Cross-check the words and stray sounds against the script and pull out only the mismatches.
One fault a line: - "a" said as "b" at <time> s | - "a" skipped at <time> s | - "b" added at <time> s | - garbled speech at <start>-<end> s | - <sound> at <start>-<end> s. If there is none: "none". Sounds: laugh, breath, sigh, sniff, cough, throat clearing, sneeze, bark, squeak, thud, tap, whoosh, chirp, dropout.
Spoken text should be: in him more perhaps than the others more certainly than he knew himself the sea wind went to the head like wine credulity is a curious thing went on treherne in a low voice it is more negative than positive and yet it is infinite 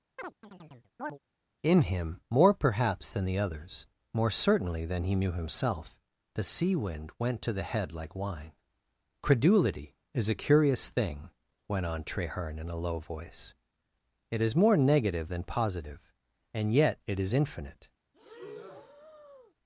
- chirp at 0.2-1.2 s
- breath at 18.1-19.5 s